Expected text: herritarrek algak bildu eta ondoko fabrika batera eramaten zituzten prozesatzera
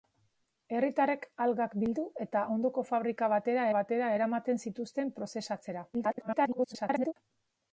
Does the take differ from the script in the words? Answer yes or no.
yes